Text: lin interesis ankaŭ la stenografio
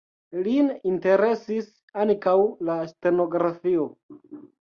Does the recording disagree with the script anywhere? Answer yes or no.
no